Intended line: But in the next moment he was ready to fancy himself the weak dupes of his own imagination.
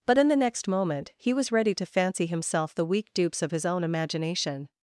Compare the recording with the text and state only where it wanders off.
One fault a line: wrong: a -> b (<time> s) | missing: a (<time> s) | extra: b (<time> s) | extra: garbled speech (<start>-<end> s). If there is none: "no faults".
no faults